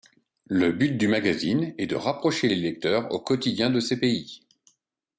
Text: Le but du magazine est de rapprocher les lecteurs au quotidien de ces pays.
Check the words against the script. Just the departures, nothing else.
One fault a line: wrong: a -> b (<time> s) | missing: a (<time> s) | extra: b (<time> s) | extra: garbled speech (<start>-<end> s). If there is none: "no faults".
no faults